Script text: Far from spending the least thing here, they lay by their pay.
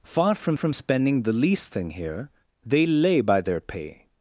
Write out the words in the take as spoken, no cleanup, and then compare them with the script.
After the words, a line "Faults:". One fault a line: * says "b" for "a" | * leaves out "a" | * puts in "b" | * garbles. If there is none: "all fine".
Far from from spending the least thing here, they lay by their pay.
Faults:
* puts in "from"